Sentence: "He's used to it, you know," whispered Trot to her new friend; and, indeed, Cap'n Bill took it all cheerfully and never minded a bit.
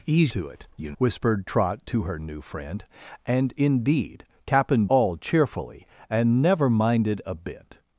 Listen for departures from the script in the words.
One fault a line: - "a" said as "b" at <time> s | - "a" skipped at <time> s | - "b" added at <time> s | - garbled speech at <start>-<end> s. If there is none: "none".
- "used" skipped at 0.3 s
- "know" skipped at 0.9 s
- "Bill took it" skipped at 4.9 s